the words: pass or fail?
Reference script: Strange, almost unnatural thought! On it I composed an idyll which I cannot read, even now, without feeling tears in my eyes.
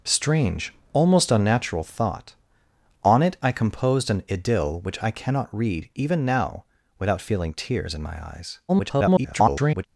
fail